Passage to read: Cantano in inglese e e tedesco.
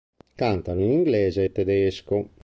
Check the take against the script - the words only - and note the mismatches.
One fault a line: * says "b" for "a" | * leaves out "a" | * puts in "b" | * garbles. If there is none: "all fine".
* leaves out "e"